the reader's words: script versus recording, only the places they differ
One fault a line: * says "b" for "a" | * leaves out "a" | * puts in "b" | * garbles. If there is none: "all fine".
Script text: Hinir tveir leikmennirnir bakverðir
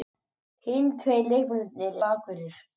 all fine